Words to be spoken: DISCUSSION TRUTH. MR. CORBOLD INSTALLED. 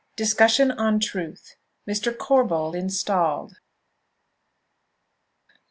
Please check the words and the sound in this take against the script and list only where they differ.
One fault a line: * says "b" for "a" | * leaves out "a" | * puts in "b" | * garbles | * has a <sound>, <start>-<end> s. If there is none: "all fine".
* puts in "ON"